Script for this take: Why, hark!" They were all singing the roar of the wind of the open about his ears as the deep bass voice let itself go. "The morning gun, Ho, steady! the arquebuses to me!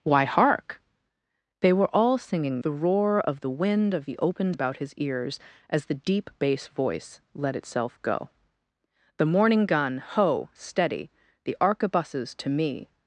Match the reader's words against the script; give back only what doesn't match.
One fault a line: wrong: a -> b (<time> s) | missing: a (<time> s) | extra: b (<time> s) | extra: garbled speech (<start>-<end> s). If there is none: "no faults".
no faults